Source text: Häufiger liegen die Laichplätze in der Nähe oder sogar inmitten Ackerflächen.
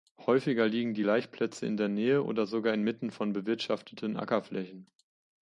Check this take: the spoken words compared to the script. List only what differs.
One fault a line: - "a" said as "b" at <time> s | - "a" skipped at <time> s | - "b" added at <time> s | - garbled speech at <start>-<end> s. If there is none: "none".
- "von bewirtschafteten" added at 3.1 s